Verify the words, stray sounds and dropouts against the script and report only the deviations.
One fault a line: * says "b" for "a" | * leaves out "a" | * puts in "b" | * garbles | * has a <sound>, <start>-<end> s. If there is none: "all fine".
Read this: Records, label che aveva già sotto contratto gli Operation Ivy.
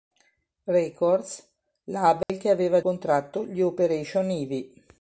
* has a dropout, 2.2-2.3 s
* leaves out "già sotto"